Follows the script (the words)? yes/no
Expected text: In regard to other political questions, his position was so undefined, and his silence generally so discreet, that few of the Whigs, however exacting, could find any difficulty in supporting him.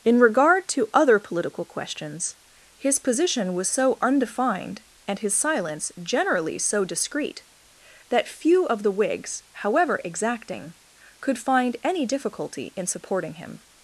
yes